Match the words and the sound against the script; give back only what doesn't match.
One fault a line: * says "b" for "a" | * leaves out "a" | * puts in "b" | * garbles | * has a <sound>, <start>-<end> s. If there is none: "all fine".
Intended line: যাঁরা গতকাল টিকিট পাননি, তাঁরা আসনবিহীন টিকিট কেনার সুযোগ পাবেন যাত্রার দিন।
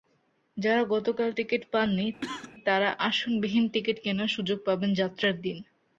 * has a cough, 2.2-2.5 s